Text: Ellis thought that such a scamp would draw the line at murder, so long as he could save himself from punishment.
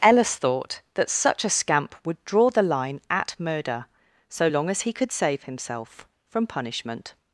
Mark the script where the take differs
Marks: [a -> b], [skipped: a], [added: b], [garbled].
Ellis thought that such a scamp would draw the line at murder, so long as he could save himself from punishment.